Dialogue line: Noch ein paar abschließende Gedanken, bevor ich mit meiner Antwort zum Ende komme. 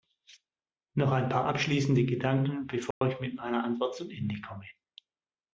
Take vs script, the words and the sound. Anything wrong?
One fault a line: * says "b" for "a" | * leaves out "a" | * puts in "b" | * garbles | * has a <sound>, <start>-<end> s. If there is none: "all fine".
* has a dropout, 2.9-3.0 s